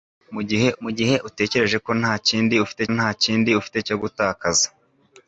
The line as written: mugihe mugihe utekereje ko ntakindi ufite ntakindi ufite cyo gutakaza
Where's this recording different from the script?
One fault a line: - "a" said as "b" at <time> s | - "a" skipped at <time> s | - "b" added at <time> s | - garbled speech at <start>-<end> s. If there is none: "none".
none